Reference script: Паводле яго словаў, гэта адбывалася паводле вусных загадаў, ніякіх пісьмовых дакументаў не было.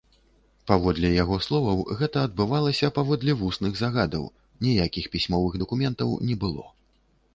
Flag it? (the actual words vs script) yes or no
no